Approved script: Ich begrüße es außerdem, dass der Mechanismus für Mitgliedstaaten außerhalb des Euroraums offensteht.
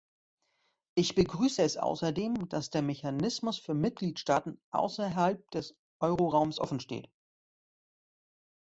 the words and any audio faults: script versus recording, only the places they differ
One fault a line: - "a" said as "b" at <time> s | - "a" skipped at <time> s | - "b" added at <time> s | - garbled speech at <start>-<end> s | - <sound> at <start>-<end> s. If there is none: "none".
none